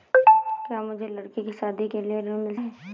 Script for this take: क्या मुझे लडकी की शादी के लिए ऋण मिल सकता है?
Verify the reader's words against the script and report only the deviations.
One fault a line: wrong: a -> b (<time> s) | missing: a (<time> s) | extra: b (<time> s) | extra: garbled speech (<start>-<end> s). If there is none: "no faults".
missing: सकता (2.6 s)